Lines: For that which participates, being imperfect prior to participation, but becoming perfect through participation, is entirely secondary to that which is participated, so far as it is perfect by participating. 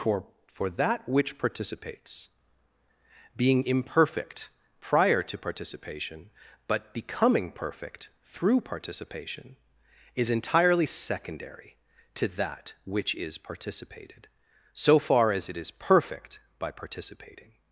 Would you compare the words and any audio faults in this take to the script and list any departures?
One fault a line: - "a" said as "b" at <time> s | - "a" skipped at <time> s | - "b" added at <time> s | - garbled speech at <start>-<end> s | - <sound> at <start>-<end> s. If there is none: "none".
- "for" added at 0.5 s